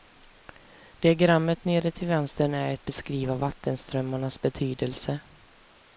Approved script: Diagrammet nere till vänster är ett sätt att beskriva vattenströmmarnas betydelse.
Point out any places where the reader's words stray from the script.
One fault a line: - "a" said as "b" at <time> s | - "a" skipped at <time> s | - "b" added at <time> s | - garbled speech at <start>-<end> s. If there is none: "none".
- "sätt att" skipped at 2.9 s